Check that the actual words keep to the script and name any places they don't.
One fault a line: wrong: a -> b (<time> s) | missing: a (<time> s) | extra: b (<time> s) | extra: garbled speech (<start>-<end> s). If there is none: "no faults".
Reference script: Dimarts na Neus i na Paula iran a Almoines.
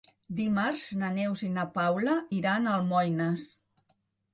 no faults